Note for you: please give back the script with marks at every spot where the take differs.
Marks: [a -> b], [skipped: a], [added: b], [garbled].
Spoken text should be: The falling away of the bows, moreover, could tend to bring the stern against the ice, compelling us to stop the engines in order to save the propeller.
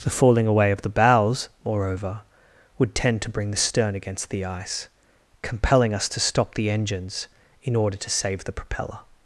The falling away of the bows, moreover, [could -> would] tend to bring the stern against the ice, compelling us to stop the engines in order to save the propeller.